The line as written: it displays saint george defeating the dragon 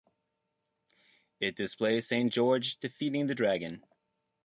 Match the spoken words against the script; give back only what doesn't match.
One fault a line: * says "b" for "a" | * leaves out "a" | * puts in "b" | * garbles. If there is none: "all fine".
all fine